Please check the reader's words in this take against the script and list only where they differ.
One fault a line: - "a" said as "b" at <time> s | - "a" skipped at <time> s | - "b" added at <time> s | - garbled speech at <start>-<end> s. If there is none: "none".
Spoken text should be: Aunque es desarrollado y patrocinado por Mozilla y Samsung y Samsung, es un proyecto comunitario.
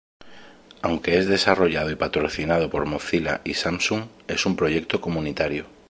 - "y Samsung" skipped at 4.0 s